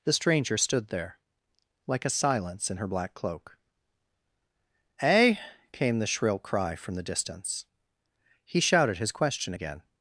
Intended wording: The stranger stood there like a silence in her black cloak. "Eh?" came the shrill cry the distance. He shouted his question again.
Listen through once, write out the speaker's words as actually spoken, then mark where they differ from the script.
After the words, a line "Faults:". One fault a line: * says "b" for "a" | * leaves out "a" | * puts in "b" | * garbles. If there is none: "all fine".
The stranger stood there like a silence in her black cloak. "Eh?" came the shrill cry from the distance. He shouted his question again.
Faults:
* puts in "from"